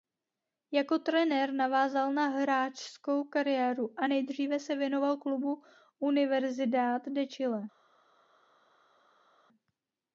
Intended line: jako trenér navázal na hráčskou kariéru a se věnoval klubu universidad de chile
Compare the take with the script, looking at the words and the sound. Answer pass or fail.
fail